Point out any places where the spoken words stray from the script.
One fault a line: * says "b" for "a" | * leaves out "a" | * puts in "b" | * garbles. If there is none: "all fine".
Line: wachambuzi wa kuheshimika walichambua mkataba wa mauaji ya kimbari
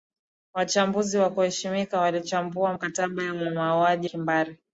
* leaves out "ya"